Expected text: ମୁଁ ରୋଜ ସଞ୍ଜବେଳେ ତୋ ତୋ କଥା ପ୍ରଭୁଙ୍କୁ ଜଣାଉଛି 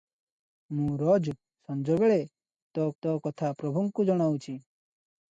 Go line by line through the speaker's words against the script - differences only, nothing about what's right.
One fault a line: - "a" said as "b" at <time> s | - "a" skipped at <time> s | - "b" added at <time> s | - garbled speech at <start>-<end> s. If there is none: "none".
none